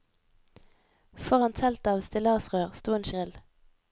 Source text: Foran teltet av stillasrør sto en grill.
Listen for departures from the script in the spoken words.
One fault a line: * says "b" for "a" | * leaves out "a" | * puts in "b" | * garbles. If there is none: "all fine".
all fine